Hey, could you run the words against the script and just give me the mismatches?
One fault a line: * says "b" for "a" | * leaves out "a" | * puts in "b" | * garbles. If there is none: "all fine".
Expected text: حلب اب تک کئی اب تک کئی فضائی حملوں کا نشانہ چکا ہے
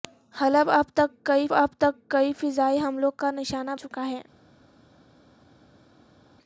all fine